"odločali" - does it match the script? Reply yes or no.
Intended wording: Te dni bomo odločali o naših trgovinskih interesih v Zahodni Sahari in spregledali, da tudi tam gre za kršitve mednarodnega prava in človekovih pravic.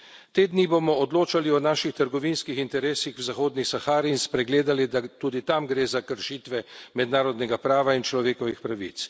yes